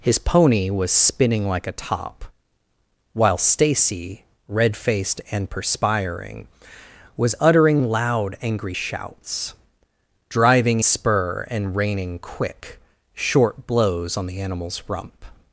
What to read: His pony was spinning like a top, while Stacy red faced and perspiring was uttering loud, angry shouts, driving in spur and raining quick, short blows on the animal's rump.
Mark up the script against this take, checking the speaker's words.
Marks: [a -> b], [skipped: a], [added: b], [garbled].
His pony was spinning like a top, while Stacy red faced and perspiring was uttering loud, angry shouts, driving [skipped: in] spur and raining quick, short blows on the animal's rump.